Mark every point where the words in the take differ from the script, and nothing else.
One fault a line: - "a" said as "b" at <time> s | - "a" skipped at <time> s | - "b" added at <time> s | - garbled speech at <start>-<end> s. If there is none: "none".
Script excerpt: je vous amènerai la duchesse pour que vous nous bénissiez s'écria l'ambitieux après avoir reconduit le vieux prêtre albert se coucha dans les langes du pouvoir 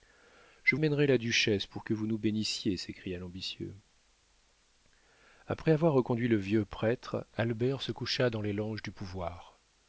- "vous" skipped at 0.8 s